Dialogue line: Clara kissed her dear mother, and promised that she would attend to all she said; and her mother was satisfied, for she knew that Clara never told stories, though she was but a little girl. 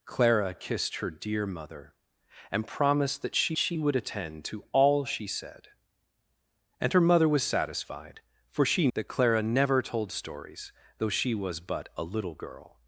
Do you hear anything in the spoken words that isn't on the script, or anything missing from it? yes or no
yes